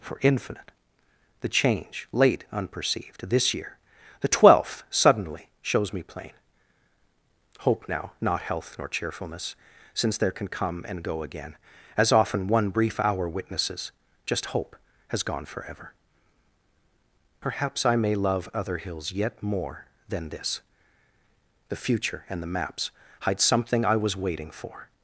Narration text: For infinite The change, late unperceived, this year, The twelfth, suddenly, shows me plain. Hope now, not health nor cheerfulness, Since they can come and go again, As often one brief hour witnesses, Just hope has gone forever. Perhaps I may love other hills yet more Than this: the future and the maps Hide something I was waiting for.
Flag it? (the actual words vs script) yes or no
yes